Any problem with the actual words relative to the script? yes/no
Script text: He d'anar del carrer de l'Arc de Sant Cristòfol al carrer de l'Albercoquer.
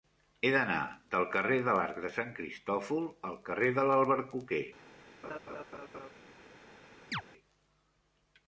no